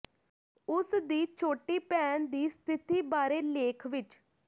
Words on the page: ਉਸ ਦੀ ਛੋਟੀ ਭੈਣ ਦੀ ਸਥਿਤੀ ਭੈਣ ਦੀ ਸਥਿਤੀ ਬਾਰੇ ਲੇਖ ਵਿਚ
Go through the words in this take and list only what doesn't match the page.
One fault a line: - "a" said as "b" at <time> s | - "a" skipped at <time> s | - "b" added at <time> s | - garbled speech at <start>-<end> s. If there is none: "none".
- "ਭੈਣ ਦੀ ਸਥਿਤੀ" skipped at 3.0 s